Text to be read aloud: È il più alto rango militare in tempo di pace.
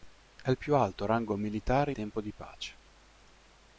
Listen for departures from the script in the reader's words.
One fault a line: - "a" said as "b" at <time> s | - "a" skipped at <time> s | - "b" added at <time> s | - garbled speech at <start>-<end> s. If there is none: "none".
- "in" skipped at 1.9 s